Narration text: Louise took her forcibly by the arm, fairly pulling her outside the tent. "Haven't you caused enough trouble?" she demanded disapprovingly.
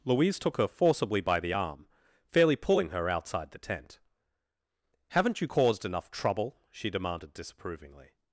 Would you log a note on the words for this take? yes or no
no